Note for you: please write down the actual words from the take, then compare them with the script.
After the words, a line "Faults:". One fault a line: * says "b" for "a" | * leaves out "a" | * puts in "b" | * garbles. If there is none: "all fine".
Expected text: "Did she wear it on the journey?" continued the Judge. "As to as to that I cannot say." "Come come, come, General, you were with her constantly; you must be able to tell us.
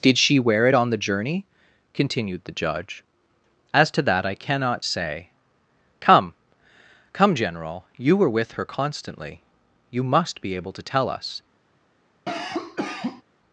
"Did she wear it on the journey?" continued the Judge. "As to that I cannot say." "Come, come, General, you were with her constantly; you must be able to tell us.
Faults:
* leaves out "as to"
* leaves out "come"